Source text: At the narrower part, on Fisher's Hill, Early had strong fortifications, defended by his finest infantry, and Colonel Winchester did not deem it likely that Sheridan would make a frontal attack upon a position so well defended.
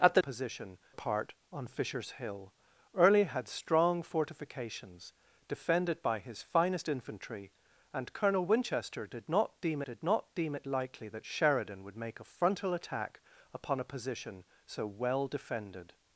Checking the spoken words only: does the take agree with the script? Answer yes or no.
no